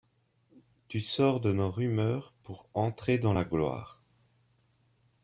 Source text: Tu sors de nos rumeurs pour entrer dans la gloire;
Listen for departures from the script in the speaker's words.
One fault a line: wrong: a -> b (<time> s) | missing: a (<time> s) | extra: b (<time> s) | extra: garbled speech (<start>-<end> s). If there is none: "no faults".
no faults